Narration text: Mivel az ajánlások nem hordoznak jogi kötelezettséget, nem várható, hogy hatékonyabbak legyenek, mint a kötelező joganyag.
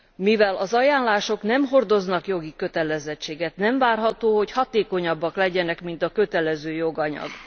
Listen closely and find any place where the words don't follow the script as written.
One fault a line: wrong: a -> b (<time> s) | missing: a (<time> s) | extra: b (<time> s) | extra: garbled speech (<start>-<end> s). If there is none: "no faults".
no faults